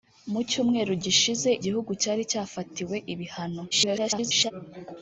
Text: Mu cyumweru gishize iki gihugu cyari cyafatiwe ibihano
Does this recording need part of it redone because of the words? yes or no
yes